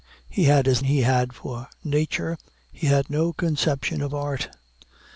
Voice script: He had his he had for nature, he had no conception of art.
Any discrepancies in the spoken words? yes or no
no